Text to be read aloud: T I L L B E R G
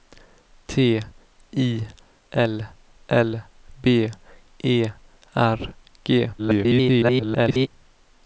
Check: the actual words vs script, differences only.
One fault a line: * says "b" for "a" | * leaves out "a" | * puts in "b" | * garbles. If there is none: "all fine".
* garbles